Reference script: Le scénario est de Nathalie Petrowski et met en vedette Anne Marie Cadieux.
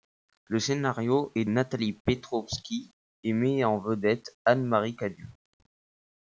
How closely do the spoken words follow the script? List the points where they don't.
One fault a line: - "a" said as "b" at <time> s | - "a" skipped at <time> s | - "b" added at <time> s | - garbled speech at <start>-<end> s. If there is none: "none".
- "de" skipped at 1.4 s